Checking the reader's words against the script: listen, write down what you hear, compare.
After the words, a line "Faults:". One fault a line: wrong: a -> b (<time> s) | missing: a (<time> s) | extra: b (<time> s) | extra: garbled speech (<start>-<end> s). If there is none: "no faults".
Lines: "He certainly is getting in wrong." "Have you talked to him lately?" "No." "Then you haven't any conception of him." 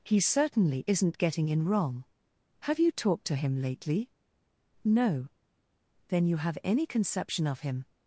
"He certainly isn't getting in wrong." "Have you talked to him lately?" "No." "Then you have any conception of him."
Faults:
wrong: is -> isn't (0.9 s)
wrong: haven't -> have (6.4 s)